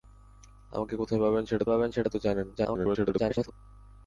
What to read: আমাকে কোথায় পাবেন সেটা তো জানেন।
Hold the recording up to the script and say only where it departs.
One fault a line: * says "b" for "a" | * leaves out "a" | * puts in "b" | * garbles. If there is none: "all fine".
* puts in "পাবেন সেটা"
* garbles